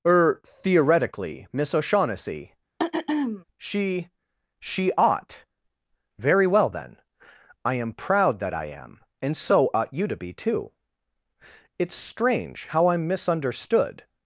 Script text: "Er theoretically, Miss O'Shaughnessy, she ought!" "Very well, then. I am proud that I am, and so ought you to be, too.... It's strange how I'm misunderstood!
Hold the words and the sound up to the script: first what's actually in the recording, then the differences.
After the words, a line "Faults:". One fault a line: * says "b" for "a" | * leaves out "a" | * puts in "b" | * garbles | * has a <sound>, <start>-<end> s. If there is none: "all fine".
"Er theoretically, Miss O'Shaughnessy, she she ought!" "Very well, then. I am proud that I am, and so ought you to be, too.... It's strange how I'm misunderstood!
Faults:
* has a throat clearing, 2.8-3.4 s
* puts in "she"